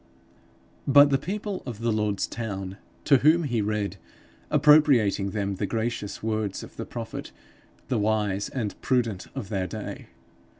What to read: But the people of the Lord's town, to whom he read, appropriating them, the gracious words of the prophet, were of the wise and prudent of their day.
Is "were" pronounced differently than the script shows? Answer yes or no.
yes